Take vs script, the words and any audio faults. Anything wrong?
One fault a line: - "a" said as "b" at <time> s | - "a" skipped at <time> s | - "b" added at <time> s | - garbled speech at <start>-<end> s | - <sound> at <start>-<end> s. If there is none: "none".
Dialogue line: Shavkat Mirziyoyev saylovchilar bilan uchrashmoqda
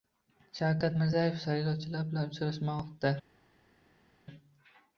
none